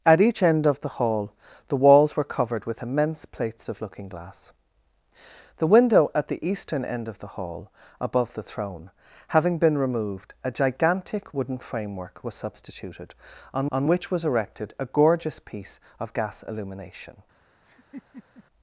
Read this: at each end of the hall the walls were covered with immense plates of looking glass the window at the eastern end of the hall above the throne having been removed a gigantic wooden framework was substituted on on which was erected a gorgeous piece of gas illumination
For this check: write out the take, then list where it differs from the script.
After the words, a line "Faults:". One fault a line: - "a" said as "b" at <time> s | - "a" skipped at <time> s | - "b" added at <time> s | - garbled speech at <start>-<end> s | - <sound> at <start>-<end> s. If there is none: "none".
at each end of the hall the walls were covered with immense plates of looking glass the window at the eastern end of the hall above the throne having been removed a gigantic wooden framework was substituted on on which was erected a gorgeous piece of gas illumination
Faults:
- laugh at 17.7-18.4 s